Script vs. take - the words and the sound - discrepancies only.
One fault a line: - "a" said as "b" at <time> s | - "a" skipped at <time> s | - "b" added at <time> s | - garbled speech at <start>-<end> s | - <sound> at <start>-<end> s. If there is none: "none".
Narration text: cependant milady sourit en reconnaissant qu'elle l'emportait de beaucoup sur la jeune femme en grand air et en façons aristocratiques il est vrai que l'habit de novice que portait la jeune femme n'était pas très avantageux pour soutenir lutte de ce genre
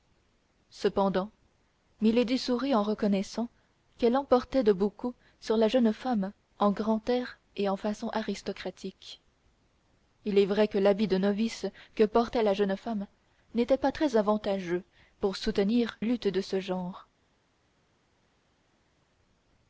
none